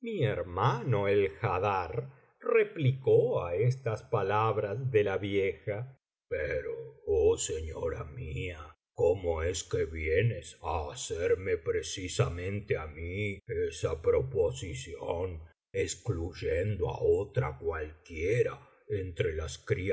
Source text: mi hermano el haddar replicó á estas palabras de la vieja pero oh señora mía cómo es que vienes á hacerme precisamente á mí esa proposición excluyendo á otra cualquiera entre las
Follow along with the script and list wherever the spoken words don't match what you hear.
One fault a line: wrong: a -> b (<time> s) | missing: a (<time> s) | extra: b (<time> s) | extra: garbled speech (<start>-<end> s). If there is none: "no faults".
no faults